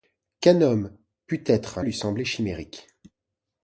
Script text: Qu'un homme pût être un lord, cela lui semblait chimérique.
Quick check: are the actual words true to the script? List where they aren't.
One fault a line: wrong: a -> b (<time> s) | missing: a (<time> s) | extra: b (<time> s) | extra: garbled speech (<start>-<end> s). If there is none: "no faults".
missing: lord cela (1.8 s)